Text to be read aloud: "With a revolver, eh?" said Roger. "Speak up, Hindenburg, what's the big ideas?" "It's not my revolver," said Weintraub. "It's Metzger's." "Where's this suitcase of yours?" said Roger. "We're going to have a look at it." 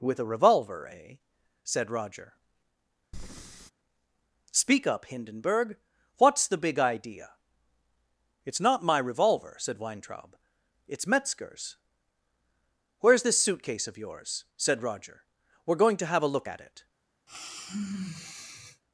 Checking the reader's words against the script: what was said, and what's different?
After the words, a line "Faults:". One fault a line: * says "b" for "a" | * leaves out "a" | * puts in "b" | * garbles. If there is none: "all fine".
"With a revolver, eh?" said Roger. "Speak up, Hindenburg, what's the big idea?" "It's not my revolver," said Weintraub. "It's Metzger's." "Where's this suitcase of yours?" said Roger. "We're going to have a look at it."
Faults:
* says "idea" for "ideas"